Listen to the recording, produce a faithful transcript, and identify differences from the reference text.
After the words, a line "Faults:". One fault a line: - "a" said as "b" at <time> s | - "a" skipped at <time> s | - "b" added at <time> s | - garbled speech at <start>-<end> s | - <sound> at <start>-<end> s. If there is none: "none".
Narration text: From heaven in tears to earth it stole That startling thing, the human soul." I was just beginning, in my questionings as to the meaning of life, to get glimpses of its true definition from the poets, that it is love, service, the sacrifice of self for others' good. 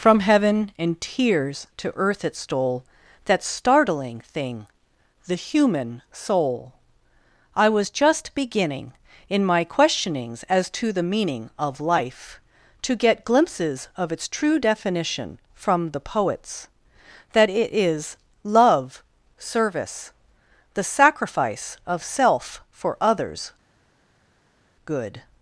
From heaven in tears to earth it stole That startling thing, the human soul." I was just beginning, in my questionings as to the meaning of life, to get glimpses of its true definition from the poets, that it is love, service, the sacrifice of self for others' good.
Faults:
none